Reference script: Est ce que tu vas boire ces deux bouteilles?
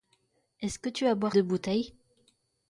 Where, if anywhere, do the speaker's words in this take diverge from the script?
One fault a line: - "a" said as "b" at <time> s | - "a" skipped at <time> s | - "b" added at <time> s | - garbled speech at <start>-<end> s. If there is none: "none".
- "ces" skipped at 1.4 s